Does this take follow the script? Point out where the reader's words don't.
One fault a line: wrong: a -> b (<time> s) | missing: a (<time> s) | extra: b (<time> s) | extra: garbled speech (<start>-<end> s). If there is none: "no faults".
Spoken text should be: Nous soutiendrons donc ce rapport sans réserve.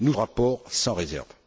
missing: soutiendrons donc ce (0.1 s)